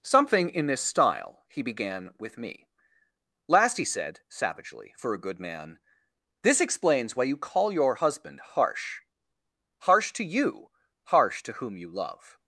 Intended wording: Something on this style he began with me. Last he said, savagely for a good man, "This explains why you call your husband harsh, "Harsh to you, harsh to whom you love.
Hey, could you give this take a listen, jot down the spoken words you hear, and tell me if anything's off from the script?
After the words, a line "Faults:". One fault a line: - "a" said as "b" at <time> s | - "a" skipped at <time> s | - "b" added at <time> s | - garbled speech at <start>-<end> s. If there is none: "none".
Something in this style he began with me. Last he said, savagely for a good man, "This explains why you call your husband harsh, "Harsh to you, harsh to whom you love.
Faults:
- "on" said as "in" at 0.5 s